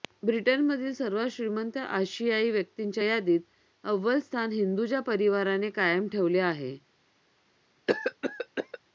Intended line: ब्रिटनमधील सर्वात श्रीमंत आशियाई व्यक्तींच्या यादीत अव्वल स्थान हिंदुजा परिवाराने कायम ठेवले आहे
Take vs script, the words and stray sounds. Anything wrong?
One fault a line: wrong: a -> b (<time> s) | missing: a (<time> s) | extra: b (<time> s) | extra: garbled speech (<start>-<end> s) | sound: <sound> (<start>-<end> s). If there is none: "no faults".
sound: cough (7.9-8.8 s)